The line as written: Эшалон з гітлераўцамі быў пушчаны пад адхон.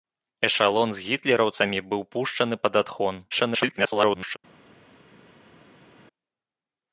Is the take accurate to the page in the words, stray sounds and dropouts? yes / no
no